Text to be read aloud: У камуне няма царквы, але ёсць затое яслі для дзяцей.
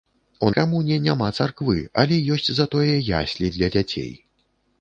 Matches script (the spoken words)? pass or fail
pass